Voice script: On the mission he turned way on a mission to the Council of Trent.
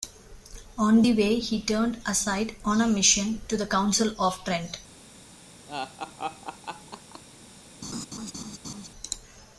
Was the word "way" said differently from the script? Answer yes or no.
yes